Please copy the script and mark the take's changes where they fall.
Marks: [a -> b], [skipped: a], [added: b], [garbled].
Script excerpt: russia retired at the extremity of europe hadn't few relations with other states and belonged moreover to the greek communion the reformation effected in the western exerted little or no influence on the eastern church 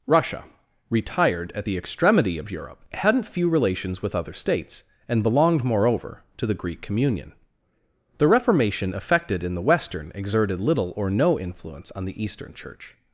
russia retired at the extremity of europe hadn't few relations with other states and belonged moreover to the greek communion the reformation effected in the western exerted little or no influence on the eastern church